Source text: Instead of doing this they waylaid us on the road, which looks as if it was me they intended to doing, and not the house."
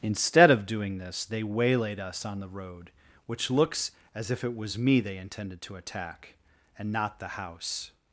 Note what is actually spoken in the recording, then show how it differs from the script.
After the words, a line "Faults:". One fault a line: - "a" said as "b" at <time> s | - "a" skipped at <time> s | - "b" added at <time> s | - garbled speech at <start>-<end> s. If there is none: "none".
Instead of doing this they waylaid us on the road, which looks as if it was me they intended to attack, and not the house."
Faults:
- "doing" said as "attack" at 5.8 s